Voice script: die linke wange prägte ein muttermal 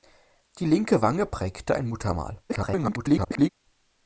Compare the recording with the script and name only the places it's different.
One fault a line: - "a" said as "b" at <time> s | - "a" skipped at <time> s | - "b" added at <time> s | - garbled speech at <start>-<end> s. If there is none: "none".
- garbled speech at 2.5-3.5 s